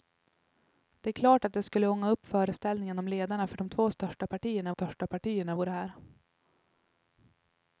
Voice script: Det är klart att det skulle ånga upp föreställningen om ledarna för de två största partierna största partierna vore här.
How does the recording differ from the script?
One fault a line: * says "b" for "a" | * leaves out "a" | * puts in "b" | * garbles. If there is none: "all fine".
all fine